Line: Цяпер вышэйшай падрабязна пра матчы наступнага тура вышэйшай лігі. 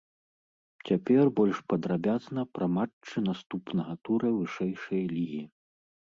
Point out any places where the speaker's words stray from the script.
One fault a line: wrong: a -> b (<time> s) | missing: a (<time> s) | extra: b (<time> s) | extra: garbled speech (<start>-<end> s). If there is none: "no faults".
wrong: вышэйшай -> больш (1.4 s)